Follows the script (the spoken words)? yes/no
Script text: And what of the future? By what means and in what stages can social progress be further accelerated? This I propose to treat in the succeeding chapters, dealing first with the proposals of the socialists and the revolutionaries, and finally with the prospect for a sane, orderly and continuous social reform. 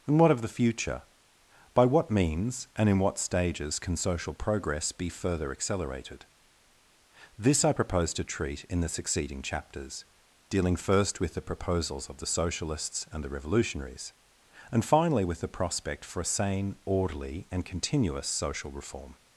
yes